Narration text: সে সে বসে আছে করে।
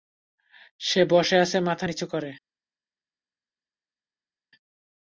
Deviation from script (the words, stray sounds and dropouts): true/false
true